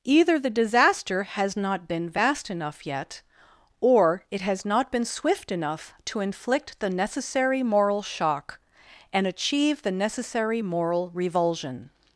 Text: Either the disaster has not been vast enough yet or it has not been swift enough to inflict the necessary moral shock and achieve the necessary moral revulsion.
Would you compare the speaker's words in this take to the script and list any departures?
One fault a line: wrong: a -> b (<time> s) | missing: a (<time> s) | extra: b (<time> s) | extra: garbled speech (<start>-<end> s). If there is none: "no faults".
no faults